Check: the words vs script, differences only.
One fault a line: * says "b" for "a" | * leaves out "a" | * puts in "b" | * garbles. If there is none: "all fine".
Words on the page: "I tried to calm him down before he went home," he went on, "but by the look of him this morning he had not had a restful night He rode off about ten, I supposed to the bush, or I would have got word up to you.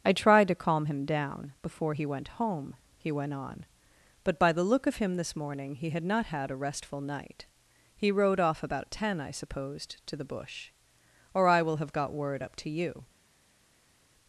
* says "will" for "would"